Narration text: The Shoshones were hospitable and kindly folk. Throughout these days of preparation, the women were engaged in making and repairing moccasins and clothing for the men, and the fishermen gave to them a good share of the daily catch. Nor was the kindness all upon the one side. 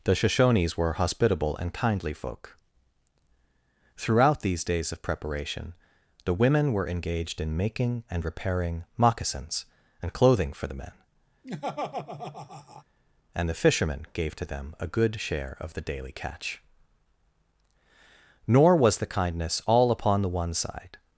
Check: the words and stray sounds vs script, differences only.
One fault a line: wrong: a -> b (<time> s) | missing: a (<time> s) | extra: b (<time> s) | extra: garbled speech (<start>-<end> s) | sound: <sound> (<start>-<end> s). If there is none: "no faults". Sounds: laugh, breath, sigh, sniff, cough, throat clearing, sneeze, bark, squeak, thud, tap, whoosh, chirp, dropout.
sound: laugh (11.4-12.8 s)